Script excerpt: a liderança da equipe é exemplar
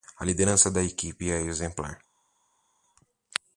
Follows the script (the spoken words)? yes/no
yes